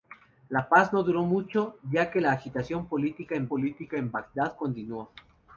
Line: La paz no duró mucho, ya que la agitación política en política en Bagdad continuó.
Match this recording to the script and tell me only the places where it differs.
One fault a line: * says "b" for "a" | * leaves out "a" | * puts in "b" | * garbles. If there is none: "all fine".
all fine